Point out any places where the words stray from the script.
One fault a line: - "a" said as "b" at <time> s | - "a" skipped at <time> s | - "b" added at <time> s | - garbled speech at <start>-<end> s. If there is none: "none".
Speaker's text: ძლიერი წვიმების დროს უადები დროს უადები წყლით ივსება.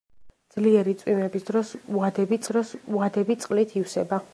none